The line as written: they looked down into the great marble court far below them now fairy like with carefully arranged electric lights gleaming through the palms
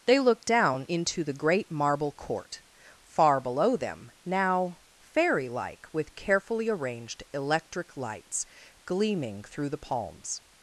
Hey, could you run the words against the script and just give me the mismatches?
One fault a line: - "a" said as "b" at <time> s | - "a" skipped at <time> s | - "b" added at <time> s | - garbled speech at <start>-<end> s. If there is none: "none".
none